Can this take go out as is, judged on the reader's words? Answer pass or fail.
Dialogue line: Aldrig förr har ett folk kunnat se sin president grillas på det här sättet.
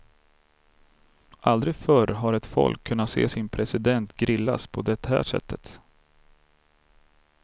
pass